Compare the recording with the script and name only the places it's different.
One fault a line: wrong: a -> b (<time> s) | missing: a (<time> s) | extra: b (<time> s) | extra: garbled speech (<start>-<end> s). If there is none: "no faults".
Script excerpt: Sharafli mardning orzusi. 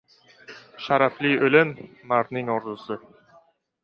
extra: o‘lim (1.5 s)